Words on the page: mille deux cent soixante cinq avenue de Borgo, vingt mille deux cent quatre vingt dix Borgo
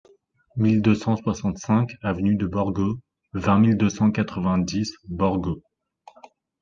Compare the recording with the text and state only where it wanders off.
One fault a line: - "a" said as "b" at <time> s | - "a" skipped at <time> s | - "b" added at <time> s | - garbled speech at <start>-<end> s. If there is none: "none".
none